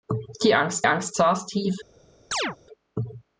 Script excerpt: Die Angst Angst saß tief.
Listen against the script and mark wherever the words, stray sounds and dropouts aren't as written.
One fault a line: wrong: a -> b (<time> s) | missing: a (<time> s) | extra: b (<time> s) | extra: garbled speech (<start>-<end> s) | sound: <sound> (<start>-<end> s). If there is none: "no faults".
sound: chirp (2.3-2.6 s)